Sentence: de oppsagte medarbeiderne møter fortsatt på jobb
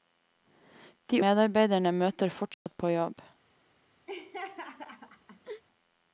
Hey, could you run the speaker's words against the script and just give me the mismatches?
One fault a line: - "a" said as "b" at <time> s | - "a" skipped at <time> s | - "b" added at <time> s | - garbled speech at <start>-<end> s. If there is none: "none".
- "oppsagte" skipped at 1.2 s